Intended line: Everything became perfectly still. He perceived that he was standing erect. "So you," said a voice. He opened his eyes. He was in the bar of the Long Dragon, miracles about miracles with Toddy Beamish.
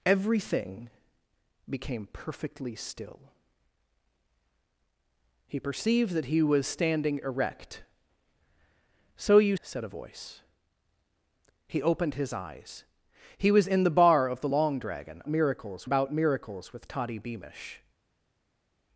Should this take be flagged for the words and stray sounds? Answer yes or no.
no